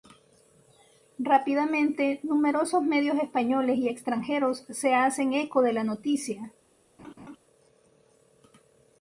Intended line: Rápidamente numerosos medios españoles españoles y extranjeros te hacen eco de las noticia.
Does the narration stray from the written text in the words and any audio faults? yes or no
yes